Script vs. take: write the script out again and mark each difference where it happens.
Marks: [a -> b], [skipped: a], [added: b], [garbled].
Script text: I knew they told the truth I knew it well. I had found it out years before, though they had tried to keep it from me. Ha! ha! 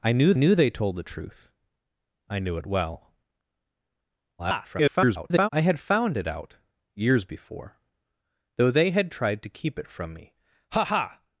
I knew [added: knew] they told the truth I knew it well. [garbled] I had found it out years before, though they had tried to keep it from me. Ha! ha!